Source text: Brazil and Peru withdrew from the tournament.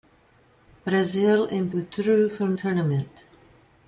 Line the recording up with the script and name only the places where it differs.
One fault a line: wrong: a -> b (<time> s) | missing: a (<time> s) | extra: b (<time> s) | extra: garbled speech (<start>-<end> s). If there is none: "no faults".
missing: Peru (1.7 s)
missing: the (2.5 s)